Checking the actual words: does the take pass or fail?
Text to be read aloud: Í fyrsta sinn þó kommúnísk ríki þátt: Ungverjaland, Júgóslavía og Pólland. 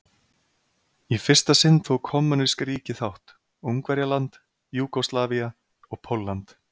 pass